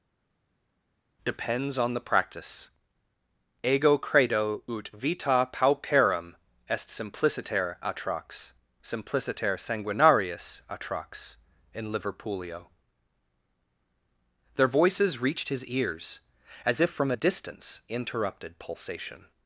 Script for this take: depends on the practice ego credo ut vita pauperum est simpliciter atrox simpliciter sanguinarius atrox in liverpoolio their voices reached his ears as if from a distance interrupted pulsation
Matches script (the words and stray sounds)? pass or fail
pass